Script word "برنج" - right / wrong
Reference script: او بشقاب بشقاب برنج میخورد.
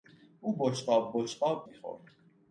wrong